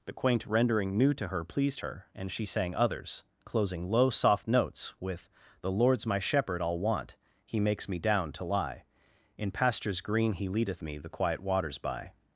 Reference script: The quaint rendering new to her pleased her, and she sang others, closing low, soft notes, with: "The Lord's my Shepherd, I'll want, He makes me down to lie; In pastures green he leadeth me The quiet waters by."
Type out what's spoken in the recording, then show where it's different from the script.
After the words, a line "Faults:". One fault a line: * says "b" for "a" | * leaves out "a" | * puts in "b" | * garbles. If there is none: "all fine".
The quaint rendering new to her pleased her, and she sang others, closing low, soft notes, with: "The Lord's my Shepherd, I'll want, He makes me down to lie; In pastures green he leadeth me The quiet waters by."
Faults:
all fine